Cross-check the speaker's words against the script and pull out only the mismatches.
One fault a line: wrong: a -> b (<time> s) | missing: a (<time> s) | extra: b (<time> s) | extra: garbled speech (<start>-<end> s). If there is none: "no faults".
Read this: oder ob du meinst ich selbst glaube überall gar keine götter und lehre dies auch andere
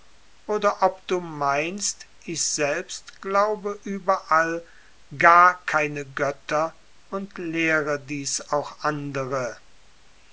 no faults